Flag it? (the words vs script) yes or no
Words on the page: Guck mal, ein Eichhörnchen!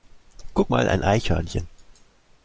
no